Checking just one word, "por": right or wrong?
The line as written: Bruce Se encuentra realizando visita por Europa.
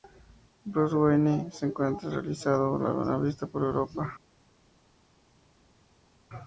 right